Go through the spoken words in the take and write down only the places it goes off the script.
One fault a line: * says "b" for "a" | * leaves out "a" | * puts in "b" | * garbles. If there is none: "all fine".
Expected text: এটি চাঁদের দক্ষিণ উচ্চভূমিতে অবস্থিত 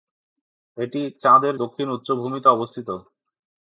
all fine